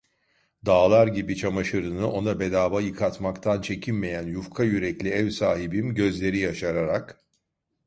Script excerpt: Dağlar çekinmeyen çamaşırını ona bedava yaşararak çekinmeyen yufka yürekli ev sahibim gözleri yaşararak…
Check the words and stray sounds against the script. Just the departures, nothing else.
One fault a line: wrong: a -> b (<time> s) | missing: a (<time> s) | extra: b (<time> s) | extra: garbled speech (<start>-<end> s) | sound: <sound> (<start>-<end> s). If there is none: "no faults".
wrong: çekinmeyen -> gibi (1.1 s)
wrong: yaşararak -> yıkatmaktan (2.8 s)